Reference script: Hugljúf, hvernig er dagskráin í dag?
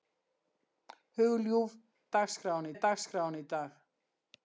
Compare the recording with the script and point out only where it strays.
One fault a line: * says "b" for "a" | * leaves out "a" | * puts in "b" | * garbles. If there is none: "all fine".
* says "dagskráin" for "hvernig"